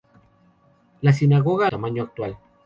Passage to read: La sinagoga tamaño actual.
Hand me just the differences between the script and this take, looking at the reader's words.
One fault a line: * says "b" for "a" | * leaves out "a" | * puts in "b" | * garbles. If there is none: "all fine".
all fine